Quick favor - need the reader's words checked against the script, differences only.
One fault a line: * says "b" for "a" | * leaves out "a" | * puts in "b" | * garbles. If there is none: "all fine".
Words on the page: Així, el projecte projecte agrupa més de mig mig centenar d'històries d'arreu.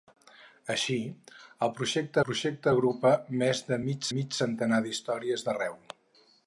all fine